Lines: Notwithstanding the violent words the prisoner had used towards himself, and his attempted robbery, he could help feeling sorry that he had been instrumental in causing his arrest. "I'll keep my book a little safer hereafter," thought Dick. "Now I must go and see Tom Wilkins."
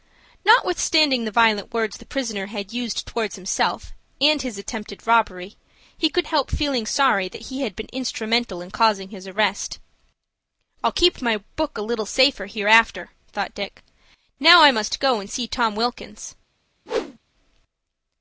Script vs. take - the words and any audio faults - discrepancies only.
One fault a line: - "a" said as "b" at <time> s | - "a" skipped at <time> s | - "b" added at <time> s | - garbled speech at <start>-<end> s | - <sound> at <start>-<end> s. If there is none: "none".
- whoosh at 16.9-17.2 s